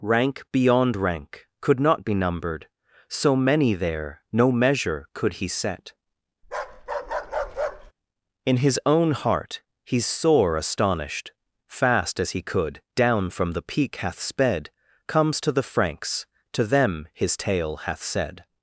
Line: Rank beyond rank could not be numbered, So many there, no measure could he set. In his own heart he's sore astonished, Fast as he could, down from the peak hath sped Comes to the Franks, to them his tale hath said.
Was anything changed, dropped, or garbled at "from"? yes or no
no